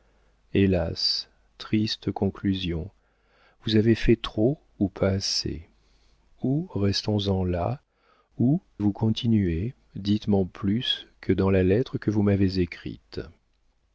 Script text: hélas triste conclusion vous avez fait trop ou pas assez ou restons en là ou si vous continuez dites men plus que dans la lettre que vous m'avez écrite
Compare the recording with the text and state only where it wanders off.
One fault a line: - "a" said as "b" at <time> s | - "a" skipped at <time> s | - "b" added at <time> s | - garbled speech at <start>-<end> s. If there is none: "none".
- "si" skipped at 8.6 s